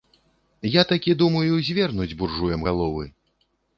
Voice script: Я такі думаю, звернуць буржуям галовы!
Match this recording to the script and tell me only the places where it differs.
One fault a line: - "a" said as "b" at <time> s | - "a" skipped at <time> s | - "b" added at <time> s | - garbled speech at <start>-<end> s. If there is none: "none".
none